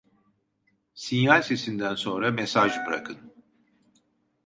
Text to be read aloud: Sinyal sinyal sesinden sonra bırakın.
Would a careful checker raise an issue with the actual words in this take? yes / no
yes